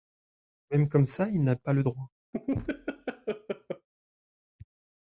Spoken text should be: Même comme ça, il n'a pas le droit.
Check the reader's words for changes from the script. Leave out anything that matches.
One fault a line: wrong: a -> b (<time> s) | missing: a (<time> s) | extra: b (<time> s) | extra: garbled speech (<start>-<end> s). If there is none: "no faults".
no faults